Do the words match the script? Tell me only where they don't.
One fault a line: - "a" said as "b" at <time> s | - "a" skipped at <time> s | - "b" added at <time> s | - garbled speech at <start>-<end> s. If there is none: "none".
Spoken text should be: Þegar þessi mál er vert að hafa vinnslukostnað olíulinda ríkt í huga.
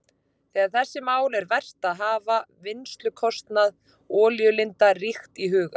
none